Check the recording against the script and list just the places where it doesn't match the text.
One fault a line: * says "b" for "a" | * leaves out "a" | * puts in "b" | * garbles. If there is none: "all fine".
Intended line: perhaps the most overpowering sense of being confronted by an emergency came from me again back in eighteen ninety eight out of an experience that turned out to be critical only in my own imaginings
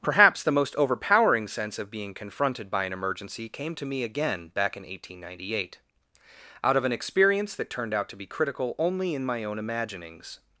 * says "to" for "from"